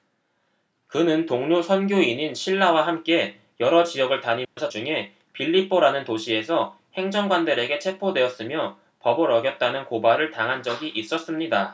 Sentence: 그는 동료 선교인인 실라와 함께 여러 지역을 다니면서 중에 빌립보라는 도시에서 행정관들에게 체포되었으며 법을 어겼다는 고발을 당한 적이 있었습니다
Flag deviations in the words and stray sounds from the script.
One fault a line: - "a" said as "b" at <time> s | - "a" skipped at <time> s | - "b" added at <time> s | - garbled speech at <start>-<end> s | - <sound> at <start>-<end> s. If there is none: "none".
- dropout at 4.4-4.6 s